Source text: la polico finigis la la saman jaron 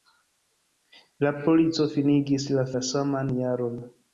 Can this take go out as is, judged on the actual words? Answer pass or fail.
pass